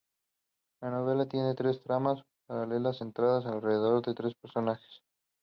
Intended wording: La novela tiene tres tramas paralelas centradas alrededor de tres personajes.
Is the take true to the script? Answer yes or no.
yes